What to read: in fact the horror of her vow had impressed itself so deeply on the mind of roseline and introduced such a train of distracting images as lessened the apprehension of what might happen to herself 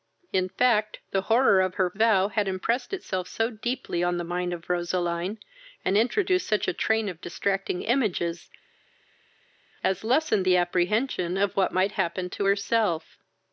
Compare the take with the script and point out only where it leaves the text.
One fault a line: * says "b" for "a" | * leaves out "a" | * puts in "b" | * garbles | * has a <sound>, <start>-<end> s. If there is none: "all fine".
all fine